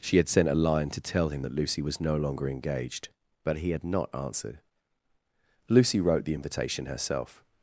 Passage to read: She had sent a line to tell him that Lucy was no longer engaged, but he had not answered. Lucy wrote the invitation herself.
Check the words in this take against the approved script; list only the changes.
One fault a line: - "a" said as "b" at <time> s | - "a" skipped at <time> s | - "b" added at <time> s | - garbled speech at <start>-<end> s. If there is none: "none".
none